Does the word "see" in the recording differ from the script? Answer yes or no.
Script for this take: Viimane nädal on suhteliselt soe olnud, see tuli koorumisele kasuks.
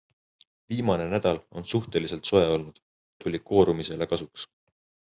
yes